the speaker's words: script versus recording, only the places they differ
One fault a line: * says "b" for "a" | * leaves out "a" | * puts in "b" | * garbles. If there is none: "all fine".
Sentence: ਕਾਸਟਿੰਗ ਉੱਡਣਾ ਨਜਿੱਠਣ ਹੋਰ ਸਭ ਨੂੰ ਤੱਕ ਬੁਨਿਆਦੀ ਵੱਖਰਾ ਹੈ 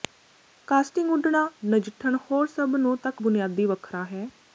all fine